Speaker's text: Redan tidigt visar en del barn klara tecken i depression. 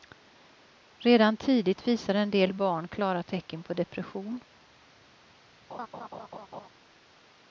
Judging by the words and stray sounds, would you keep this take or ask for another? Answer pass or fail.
fail